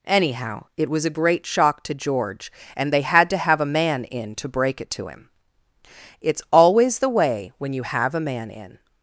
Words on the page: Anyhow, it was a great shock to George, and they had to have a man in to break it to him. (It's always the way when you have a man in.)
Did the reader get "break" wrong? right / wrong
right